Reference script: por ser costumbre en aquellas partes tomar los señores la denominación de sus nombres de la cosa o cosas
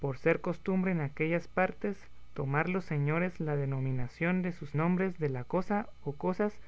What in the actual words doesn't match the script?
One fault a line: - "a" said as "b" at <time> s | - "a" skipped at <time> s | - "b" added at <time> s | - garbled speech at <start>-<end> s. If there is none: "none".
none